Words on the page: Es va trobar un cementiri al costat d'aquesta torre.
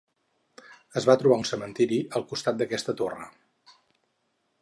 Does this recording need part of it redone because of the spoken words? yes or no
no